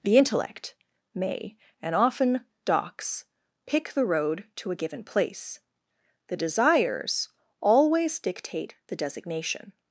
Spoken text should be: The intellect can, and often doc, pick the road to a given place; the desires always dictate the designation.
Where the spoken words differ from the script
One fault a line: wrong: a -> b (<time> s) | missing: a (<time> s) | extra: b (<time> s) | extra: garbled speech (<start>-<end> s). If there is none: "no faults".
wrong: can -> may (1.1 s)
wrong: doc -> docs (2.6 s)